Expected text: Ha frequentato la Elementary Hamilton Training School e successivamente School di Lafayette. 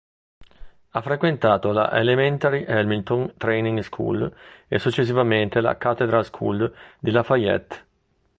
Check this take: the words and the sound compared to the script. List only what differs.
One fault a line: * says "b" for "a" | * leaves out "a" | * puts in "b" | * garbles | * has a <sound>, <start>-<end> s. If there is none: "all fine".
* puts in "la Cathedral"